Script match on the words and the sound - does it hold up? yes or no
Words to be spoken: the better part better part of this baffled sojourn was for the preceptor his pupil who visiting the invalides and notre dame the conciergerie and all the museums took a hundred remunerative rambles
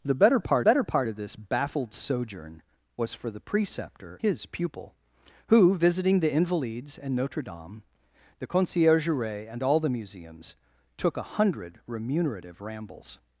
yes